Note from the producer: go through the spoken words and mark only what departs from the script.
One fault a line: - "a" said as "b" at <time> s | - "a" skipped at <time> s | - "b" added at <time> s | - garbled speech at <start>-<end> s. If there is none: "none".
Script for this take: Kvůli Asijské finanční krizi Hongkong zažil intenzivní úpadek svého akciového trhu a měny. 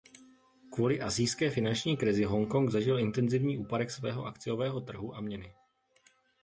none